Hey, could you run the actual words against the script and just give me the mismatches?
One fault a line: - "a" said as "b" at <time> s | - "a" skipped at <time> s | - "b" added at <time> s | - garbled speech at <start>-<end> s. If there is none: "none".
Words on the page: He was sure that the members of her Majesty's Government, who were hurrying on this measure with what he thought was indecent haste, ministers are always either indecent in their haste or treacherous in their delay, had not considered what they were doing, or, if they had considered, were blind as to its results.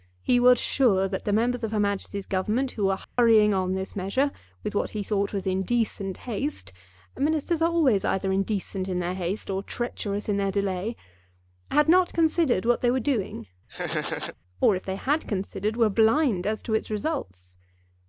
none